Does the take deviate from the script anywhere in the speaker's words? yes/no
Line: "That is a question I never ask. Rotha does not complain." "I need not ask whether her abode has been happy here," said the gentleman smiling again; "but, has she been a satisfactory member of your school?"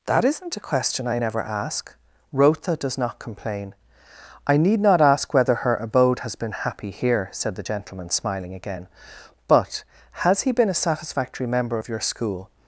yes